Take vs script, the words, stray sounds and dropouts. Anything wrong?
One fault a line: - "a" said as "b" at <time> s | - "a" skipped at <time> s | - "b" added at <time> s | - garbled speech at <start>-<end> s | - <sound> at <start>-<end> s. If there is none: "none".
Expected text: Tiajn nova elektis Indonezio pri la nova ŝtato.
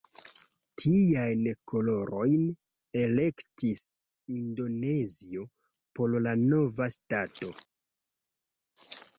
- "nova" said as "kolorojn" at 1.7 s
- "pri" said as "por" at 6.0 s